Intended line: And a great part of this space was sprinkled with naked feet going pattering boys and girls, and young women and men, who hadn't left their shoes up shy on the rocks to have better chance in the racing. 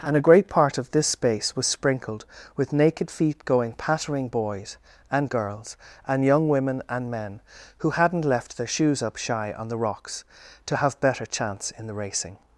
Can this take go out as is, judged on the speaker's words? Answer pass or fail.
pass